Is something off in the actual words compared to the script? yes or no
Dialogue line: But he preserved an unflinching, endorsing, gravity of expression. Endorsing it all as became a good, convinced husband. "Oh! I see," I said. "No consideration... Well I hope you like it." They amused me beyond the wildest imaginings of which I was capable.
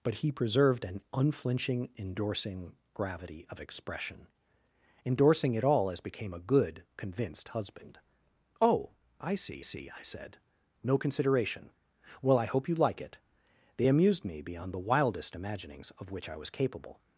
yes